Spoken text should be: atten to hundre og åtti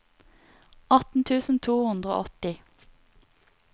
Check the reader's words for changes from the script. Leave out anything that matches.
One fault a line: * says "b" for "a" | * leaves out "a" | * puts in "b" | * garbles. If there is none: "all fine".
* puts in "tusen"